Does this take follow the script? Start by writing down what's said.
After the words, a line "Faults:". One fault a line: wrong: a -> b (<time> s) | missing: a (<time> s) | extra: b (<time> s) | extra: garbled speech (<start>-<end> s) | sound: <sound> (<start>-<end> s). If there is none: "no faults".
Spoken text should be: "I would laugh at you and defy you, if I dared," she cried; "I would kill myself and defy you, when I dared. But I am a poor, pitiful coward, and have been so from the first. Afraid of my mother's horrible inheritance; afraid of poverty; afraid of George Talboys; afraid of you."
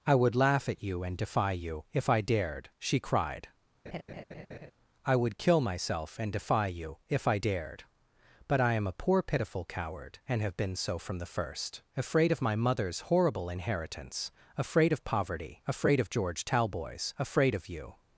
"I would laugh at you and defy you, if I dared," she cried; "I would kill myself and defy you, if I dared. But I am a poor, pitiful coward, and have been so from the first. Afraid of my mother's horrible inheritance; afraid of poverty; afraid of George Talboys; afraid of you."
Faults:
sound: laugh (3.9-4.7 s)
wrong: when -> if (7.1 s)